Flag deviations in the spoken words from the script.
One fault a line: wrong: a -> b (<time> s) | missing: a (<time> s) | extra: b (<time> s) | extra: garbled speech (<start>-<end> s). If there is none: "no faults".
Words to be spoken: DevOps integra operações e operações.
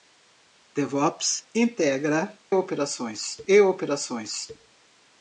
no faults